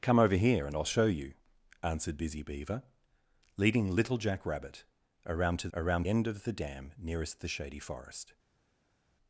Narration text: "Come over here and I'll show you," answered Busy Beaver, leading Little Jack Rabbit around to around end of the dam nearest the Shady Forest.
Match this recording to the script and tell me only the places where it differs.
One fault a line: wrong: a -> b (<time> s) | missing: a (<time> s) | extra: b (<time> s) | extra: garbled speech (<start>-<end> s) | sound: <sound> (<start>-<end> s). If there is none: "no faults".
no faults